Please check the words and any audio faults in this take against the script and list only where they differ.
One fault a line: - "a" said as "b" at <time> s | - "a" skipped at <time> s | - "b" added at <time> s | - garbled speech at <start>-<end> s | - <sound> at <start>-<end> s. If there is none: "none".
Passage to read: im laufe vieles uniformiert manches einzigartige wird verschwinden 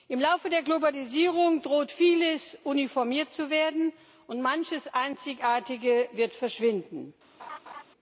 - "der globalisierung droht" added at 0.5 s
- "zu werden und" added at 3.3 s
- laugh at 7.4-7.8 s